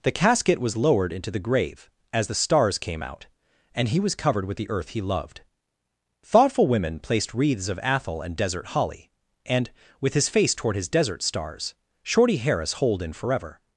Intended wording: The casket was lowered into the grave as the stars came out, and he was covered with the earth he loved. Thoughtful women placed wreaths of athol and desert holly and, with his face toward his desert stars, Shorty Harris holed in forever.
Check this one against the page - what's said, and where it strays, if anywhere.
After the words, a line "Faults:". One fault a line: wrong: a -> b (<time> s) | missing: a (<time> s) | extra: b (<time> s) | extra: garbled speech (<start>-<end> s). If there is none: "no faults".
The casket was lowered into the grave as the stars came out, and he was covered with the earth he loved. Thoughtful women placed wreaths of athol and desert holly and, with his face toward his desert stars, Shorty Harris holed in forever.
Faults:
no faults